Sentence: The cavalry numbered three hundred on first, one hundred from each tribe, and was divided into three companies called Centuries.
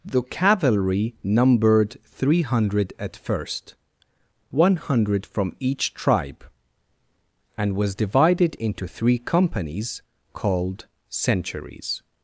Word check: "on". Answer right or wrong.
wrong